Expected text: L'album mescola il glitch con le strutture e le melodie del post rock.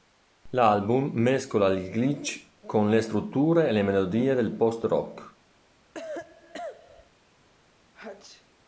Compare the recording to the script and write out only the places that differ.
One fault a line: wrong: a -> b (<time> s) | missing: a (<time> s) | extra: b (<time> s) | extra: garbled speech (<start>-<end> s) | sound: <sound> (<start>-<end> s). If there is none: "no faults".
sound: cough (5.9-7.1 s)
sound: sneeze (7.9-8.5 s)